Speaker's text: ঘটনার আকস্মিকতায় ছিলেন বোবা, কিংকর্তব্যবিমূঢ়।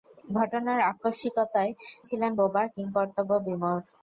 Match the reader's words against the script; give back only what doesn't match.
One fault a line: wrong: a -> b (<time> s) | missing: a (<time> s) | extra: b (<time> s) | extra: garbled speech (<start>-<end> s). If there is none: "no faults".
no faults